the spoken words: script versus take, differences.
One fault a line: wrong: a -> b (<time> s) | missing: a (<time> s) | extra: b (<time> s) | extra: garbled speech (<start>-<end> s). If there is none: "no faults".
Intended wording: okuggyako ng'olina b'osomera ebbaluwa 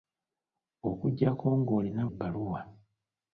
missing: b'osomera (2.0 s)